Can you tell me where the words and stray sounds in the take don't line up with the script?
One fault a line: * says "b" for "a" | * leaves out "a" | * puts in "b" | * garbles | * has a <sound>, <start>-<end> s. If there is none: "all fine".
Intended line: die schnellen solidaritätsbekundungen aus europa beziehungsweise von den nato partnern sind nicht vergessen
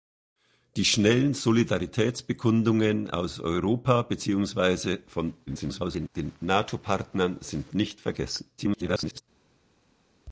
* garbles
* garbles